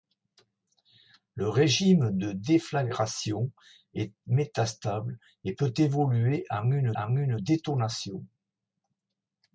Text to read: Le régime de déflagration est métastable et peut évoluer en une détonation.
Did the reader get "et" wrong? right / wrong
right